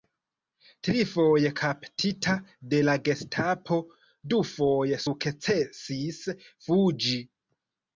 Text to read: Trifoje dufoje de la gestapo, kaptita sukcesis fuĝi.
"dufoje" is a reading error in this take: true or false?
true